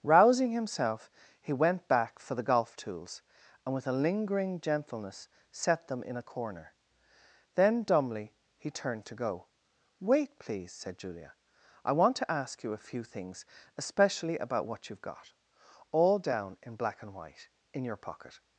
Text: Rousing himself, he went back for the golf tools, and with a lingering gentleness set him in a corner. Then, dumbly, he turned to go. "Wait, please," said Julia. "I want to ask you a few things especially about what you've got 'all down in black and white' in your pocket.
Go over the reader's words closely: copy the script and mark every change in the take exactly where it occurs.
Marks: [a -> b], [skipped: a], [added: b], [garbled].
Rousing himself, he went back for the golf tools, and with a lingering gentleness set [him -> them] in a corner. Then, dumbly, he turned to go. "Wait, please," said Julia. "I want to ask you a few things especially about what you've got 'all down in black and white' in your pocket.